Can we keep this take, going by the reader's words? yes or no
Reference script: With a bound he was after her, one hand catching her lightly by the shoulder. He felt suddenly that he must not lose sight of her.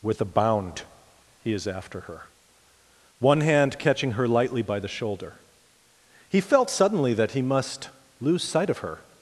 no